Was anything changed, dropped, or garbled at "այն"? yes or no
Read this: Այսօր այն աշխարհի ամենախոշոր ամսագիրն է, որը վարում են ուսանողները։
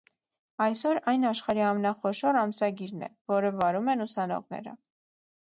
no